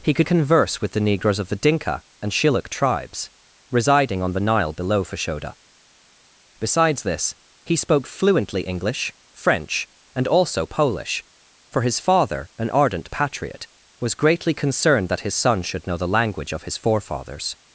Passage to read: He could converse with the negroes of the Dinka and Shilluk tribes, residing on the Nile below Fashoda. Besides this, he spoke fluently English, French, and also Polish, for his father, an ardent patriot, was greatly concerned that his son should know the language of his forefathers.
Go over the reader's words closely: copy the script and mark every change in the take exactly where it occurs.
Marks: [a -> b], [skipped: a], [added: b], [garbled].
He could converse with the negroes of the Dinka and Shilluk tribes, residing on the Nile below Fashoda. Besides this, he spoke fluently English, French, and also Polish, for his father, an ardent patriot, was greatly concerned that his son should know the language of his forefathers.